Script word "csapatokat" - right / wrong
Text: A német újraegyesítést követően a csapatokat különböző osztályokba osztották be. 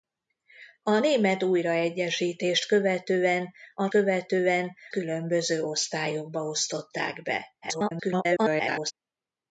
wrong